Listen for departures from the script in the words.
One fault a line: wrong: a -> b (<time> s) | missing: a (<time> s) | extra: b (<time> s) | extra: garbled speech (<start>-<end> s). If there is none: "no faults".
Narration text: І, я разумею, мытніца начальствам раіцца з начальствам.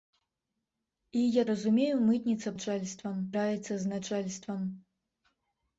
no faults